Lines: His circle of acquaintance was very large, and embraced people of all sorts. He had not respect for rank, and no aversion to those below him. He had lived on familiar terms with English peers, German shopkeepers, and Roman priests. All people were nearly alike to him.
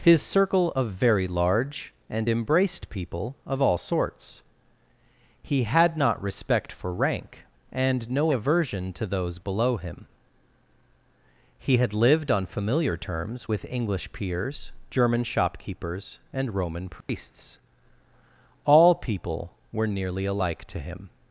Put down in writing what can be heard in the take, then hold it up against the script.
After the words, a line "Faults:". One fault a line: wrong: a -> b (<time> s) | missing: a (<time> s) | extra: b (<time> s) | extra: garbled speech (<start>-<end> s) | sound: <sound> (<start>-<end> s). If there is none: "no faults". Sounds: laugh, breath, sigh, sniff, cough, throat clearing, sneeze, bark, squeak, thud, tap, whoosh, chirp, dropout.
His circle of very large, and embraced people of all sorts. He had not respect for rank, and no aversion to those below him. He had lived on familiar terms with English peers, German shopkeepers, and Roman priests. All people were nearly alike to him.
Faults:
missing: acquaintance was (0.9 s)
sound: dropout (17.0-17.1 s)